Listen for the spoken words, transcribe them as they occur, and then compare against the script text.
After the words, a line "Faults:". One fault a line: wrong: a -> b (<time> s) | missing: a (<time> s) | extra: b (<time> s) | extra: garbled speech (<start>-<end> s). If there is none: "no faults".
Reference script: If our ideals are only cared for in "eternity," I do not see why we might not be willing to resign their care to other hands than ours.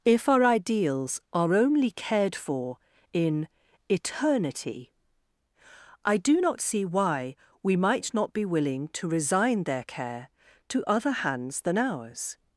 If our ideals are only cared for in "eternity," I do not see why we might not be willing to resign their care to other hands than ours.
Faults:
no faults